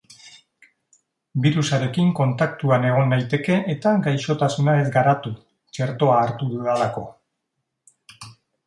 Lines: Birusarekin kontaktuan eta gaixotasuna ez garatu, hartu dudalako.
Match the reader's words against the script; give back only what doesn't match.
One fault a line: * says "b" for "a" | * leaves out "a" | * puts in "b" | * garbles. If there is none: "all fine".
* puts in "egon naiteke"
* puts in "txertoa"